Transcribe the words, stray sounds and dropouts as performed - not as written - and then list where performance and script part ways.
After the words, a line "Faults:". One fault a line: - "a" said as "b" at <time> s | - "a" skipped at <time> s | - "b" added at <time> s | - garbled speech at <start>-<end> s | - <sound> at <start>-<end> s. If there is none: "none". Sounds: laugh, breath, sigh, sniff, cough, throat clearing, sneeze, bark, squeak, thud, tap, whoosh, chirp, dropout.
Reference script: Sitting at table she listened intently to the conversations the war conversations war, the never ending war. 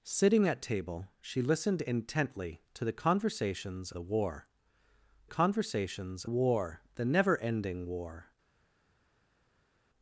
Sitting at table she listened intently to the conversations the war conversations war, the never ending war.
Faults:
none